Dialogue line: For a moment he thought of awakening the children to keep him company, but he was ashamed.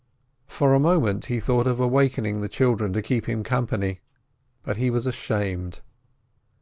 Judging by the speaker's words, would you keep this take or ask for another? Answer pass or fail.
pass